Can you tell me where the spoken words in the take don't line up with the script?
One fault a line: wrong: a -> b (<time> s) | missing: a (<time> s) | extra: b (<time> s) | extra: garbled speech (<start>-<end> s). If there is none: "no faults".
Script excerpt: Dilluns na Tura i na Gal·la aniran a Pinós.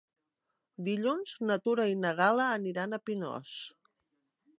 no faults